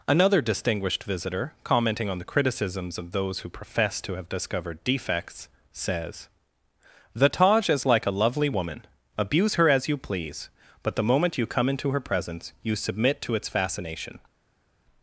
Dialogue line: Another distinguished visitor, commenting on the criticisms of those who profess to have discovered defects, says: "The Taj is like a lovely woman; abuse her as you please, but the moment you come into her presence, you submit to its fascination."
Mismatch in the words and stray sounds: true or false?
false